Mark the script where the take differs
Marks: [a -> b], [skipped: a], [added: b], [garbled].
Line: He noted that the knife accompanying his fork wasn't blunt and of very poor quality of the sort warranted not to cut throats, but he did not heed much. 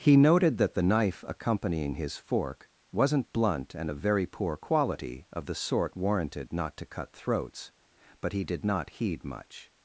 He noted that the knife accompanying his fork wasn't blunt and of very poor quality of the sort warranted not to cut throats, but he did not heed much.